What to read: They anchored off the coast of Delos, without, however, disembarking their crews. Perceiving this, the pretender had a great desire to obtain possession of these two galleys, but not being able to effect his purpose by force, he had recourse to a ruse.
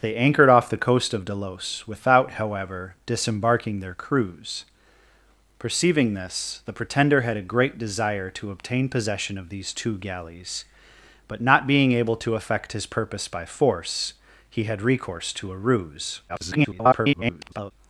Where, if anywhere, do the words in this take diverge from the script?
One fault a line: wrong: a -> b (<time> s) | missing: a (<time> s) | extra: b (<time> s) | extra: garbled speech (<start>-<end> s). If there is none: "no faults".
extra: garbled speech (16.3-17.7 s)